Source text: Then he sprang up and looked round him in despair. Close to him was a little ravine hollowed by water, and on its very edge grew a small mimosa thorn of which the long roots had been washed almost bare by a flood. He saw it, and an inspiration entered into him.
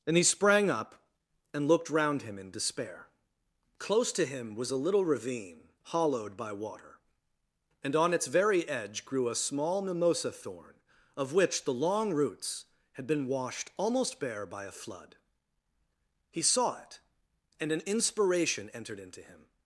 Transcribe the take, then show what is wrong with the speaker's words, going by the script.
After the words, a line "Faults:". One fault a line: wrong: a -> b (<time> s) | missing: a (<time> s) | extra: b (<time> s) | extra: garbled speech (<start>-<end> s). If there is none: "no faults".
And he sprang up and looked round him in despair. Close to him was a little ravine hollowed by water, and on its very edge grew a small mimosa thorn of which the long roots had been washed almost bare by a flood. He saw it, and an inspiration entered into him.
Faults:
wrong: Then -> And (0.1 s)